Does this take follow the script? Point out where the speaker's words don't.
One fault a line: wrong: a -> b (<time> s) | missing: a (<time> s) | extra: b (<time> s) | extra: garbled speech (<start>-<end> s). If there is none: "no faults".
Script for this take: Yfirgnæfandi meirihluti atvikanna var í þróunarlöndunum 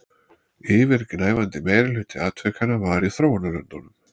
no faults